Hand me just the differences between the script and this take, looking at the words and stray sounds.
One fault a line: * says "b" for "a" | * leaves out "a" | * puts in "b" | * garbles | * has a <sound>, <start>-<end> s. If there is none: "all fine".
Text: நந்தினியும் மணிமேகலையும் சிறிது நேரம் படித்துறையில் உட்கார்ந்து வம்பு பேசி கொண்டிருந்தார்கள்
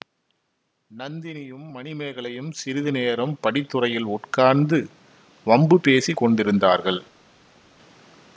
all fine